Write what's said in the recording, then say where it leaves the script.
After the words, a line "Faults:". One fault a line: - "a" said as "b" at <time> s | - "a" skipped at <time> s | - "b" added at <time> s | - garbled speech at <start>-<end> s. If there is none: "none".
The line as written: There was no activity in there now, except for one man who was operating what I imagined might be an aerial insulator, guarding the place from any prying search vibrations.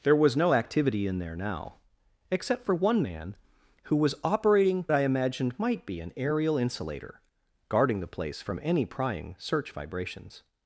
There was no activity in there now, except for one man who was operating I imagined might be an aerial insulator, guarding the place from any prying search vibrations.
Faults:
- "what" skipped at 4.8 s